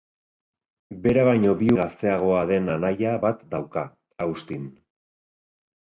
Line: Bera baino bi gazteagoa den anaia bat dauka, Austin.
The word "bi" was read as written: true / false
true